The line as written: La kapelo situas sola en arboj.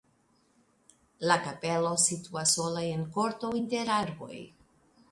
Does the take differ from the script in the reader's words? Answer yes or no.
yes